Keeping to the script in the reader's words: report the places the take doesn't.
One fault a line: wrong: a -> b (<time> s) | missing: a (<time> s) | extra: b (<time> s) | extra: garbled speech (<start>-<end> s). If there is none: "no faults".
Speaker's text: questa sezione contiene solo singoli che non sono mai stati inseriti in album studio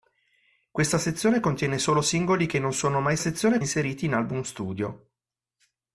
wrong: stati -> sezione (3.2 s)